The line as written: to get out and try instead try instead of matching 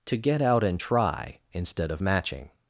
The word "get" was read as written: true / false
true